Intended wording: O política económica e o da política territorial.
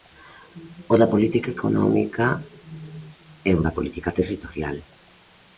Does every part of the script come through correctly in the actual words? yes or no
no